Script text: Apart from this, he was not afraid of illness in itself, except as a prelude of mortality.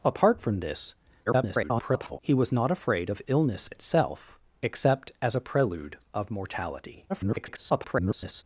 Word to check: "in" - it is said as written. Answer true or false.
false